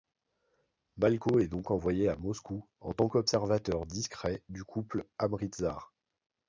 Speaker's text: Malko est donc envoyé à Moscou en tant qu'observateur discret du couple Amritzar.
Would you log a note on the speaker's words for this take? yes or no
no